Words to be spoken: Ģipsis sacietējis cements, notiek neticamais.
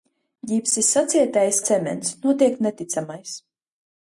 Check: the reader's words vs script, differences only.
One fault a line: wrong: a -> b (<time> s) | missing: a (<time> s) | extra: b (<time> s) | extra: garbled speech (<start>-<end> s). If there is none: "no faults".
no faults